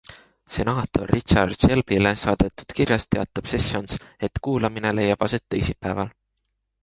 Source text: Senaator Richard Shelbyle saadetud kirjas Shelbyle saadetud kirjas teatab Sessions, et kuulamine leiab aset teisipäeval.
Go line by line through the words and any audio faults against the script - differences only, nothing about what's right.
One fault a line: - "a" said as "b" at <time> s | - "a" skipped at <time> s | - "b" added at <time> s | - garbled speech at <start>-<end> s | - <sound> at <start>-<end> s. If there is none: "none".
- "Shelbyle saadetud kirjas" skipped at 3.0 s